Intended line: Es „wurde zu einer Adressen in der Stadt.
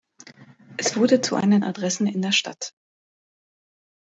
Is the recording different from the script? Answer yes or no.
no